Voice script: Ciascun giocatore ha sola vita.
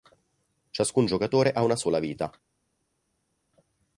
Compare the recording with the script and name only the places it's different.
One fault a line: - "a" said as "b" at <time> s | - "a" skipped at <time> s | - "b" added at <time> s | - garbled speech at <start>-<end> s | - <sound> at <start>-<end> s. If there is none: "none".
- "una" added at 1.6 s